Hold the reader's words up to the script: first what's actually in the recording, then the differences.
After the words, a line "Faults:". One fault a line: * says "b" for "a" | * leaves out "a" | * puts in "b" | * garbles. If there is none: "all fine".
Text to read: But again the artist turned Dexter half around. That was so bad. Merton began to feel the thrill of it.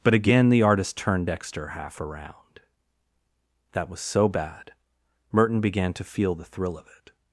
But again the artist turned Dexter half around. That was so bad. Merton began to feel the thrill of it.
Faults:
all fine